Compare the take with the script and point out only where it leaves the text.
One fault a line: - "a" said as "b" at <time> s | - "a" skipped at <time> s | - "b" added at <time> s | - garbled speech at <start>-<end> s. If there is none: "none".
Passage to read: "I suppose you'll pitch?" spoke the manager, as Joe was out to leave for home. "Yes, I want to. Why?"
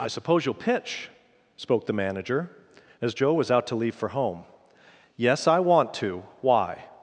none